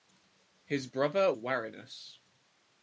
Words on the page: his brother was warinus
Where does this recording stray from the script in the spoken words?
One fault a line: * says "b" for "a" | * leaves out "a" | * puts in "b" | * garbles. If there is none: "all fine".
* leaves out "was"